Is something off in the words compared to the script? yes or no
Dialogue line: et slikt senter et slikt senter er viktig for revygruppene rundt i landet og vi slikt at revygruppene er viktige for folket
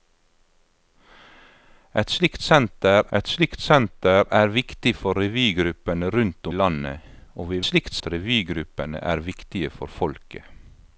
no